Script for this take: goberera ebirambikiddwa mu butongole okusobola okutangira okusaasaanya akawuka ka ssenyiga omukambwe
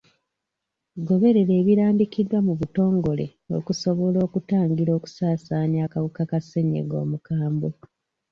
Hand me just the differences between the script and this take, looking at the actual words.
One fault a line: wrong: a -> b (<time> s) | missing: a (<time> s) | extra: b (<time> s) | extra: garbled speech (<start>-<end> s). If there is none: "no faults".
no faults